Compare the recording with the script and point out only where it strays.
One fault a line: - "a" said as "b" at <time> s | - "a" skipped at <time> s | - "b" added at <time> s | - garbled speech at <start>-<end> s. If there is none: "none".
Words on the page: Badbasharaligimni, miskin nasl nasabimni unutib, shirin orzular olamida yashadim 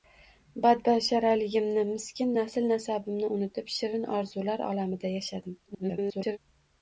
- garbled speech at 5.7-6.4 s